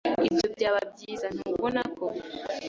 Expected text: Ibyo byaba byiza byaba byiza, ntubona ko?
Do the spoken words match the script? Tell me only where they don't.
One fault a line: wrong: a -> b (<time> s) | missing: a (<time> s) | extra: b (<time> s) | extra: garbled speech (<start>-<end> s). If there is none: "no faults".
missing: byaba byiza (1.3 s)